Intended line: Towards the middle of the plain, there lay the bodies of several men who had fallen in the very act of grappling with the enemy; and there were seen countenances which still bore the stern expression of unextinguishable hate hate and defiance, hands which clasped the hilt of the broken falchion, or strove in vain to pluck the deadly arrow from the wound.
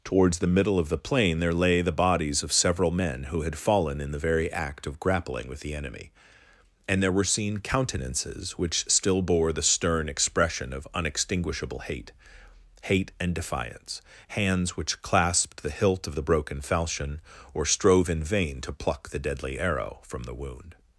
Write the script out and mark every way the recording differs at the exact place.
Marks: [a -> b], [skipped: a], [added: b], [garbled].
Towards the middle of the plain, there lay the bodies of several men who had fallen in the very act of grappling with the enemy; and there were seen countenances which still bore the stern expression of unextinguishable hate hate and defiance, hands which clasped the hilt of the broken falchion, or strove in vain to pluck the deadly arrow from the wound.